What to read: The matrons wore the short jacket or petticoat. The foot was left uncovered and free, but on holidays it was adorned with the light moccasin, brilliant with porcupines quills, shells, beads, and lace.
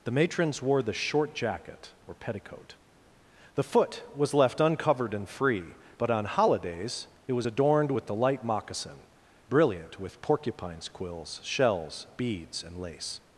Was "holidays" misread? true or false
false